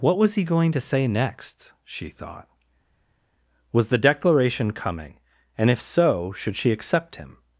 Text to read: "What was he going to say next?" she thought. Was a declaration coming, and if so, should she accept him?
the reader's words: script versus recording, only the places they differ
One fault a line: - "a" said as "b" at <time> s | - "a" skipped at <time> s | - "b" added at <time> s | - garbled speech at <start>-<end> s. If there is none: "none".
- "a" said as "the" at 3.9 s